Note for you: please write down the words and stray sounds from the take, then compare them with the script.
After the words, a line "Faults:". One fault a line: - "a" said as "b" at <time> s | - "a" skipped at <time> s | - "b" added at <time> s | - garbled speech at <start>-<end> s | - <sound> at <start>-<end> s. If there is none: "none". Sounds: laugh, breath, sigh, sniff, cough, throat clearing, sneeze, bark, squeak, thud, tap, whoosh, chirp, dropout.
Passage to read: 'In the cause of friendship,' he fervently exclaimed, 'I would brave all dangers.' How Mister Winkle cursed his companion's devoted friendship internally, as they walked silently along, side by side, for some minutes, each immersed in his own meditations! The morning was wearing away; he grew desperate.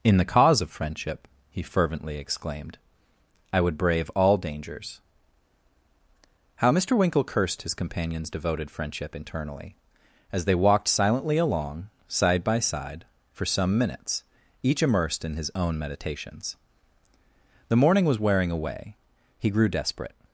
'In the cause of friendship,' he fervently exclaimed, 'I would brave all dangers.' How Mister Winkle cursed his companion's devoted friendship internally, as they walked silently along, side by side, for some minutes, each immersed in his own meditations! The morning was wearing away; he grew desperate.
Faults:
none